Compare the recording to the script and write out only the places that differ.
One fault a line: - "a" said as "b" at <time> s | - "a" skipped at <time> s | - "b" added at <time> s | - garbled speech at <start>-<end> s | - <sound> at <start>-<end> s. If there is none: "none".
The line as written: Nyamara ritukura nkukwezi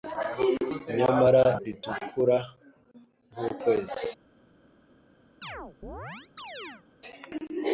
- chirp at 5.4-6.8 s